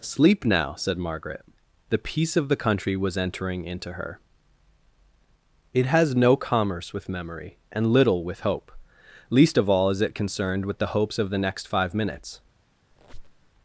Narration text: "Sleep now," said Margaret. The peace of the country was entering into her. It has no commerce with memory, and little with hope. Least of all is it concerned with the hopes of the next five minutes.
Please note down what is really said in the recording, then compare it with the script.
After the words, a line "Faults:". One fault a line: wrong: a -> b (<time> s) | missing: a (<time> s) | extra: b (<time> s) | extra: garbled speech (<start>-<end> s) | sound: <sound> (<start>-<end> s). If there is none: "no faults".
"Sleep now," said Margaret. The peace of the country was entering into her. It has no commerce with memory, and little with hope. Least of all is it concerned with the hopes of the next five minutes.
Faults:
sound: squeak (12.9-13.5 s)